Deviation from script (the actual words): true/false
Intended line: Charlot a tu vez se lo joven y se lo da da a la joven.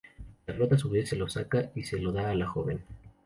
true